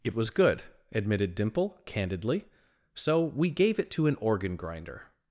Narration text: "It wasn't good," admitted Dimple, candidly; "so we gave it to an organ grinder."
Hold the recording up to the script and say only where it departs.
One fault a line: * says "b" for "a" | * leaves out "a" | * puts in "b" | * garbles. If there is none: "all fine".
* says "was" for "wasn't"